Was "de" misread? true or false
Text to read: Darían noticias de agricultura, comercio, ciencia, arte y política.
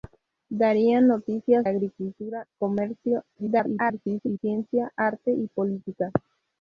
true